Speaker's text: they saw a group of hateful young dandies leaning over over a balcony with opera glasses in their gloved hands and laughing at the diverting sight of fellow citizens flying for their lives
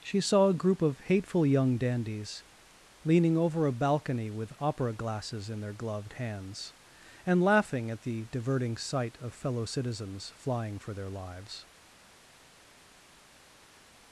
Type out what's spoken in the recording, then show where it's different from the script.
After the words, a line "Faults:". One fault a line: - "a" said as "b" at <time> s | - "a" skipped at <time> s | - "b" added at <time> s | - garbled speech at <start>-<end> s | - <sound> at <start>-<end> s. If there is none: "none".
she saw a group of hateful young dandies leaning over a balcony with opera glasses in their gloved hands and laughing at the diverting sight of fellow citizens flying for their lives
Faults:
- "they" said as "she" at 0.0 s
- "over" skipped at 3.7 s